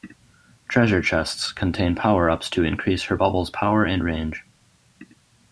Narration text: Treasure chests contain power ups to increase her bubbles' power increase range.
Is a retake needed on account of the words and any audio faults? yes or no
yes